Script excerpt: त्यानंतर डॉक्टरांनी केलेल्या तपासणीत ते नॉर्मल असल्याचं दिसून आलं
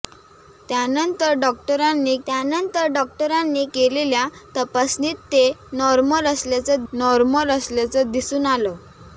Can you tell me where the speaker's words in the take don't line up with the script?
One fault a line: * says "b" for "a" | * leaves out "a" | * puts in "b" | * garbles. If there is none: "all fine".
* puts in "त्यानंतर डॉक्टरांनी"
* puts in "नॉर्मल असल्याचं"